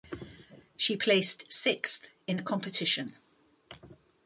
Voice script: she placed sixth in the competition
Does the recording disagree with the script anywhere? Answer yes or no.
no